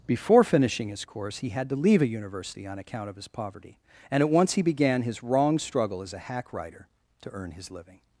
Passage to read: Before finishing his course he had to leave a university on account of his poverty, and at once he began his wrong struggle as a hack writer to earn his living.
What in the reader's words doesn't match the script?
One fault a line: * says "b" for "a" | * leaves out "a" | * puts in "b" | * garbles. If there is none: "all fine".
all fine